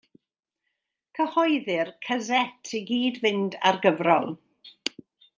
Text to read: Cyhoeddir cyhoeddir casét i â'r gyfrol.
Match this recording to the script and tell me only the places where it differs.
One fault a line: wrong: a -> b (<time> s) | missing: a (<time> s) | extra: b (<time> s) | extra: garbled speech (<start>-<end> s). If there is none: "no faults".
missing: cyhoeddir (1.9 s)
extra: gyd fynd (2.9 s)